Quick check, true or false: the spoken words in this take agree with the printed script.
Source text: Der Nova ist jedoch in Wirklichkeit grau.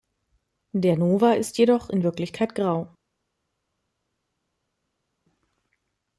true